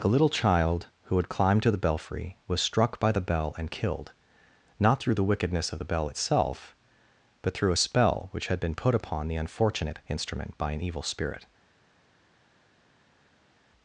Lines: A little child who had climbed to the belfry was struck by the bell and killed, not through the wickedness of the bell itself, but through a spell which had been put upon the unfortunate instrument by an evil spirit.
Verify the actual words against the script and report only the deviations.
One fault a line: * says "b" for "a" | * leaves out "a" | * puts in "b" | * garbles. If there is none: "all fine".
all fine